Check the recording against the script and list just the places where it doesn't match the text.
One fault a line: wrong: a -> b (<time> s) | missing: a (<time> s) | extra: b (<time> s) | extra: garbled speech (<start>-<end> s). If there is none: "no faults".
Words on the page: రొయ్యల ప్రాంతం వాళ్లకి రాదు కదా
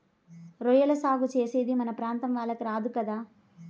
extra: సాగు చేసేది మన (0.9 s)